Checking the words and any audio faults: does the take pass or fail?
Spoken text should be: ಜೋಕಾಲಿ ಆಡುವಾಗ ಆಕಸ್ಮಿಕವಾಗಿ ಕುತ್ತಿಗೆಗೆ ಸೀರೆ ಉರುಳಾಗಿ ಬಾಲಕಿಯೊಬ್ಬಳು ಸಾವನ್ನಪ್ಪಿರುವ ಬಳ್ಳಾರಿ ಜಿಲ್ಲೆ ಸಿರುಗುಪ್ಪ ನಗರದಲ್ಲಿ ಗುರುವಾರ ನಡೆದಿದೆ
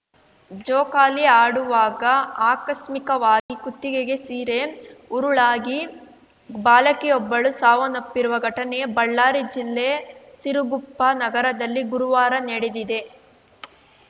fail